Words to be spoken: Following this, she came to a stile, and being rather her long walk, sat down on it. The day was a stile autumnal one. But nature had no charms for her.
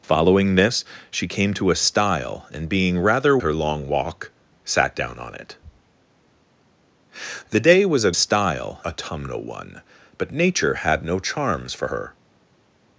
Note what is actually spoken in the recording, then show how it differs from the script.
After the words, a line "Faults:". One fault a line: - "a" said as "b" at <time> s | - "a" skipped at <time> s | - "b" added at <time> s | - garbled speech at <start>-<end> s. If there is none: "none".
Following this, she came to a stile, and being rather her long walk, sat down on it. The day was a stile autumnal one. But nature had no charms for her.
Faults:
none